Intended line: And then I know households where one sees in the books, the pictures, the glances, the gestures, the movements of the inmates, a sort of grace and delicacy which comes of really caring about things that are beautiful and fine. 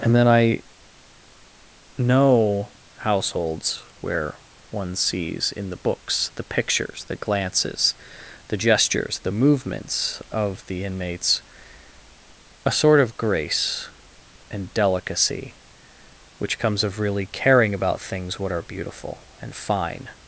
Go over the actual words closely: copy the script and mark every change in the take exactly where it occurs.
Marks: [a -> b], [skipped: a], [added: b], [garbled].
And then I know households where one sees in the books, the pictures, the glances, the gestures, the movements of the inmates, a sort of grace and delicacy which comes of really caring about things [that -> what] are beautiful and fine.